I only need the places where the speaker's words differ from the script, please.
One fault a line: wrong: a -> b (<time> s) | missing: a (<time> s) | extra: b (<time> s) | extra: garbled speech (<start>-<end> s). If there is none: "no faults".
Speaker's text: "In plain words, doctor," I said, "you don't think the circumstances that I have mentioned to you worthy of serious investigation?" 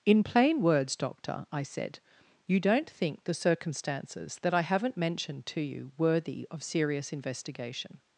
wrong: have -> haven't (4.6 s)